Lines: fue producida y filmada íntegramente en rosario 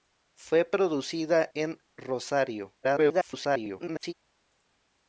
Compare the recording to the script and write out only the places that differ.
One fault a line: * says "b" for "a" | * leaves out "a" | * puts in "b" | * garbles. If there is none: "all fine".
* leaves out "y filmada íntegramente"
* garbles